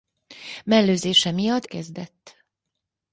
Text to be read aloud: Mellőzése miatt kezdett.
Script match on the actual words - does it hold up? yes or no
yes